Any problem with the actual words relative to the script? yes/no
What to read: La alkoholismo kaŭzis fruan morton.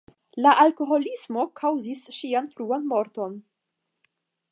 yes